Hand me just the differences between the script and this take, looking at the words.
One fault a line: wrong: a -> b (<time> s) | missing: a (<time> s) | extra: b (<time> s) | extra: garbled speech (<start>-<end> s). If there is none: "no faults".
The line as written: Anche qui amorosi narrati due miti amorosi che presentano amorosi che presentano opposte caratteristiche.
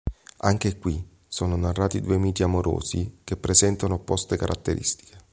wrong: amorosi -> sono (1.3 s)
missing: amorosi che presentano (3.9 s)